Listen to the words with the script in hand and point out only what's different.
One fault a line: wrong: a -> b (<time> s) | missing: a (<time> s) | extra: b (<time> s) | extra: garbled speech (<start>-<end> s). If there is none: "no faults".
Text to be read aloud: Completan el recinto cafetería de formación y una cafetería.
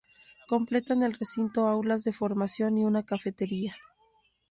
wrong: cafetería -> aulas (1.7 s)